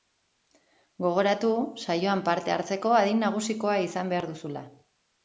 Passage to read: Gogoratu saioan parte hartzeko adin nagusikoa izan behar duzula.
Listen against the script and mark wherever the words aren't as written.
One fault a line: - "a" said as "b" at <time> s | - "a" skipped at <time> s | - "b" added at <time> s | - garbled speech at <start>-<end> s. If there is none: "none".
none